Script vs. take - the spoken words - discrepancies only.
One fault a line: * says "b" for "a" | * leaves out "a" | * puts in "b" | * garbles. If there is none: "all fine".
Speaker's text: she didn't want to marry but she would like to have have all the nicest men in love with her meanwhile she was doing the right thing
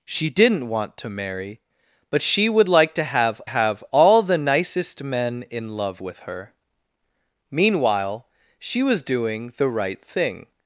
all fine